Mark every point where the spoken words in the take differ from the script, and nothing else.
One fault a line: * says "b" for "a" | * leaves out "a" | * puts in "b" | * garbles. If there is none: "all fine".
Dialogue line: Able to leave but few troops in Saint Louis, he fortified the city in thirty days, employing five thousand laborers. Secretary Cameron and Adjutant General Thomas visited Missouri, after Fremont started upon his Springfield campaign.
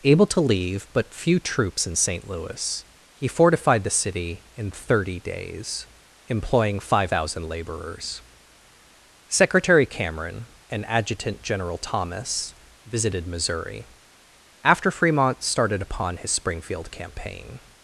all fine